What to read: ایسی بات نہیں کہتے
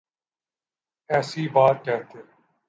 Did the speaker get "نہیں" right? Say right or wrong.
wrong